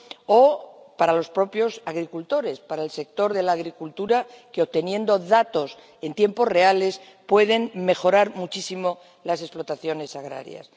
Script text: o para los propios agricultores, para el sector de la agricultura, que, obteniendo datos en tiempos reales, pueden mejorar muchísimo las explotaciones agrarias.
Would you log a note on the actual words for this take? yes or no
no